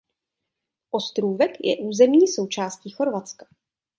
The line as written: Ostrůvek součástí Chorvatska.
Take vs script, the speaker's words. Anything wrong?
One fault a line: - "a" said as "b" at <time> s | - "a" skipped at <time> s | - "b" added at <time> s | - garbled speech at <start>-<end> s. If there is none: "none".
- "je územní" added at 1.6 s